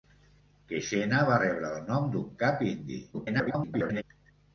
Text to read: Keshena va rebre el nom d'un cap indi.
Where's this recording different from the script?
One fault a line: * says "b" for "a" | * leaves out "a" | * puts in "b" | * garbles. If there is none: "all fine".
* garbles